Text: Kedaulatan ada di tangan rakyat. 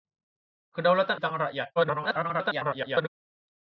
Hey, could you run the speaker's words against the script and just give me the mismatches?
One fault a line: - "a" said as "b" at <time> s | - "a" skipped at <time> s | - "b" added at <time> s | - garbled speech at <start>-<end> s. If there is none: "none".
- "ada di" skipped at 1.2 s
- garbled speech at 1.8-3.1 s